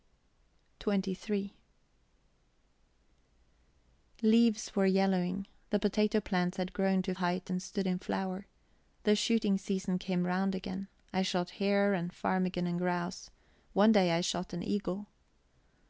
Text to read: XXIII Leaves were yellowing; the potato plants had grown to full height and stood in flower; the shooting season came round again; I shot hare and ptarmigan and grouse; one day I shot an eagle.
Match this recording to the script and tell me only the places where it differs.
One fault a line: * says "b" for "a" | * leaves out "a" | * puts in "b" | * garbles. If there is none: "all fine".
* leaves out "full"